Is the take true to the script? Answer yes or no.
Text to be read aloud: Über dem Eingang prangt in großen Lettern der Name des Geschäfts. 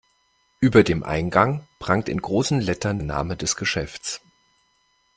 no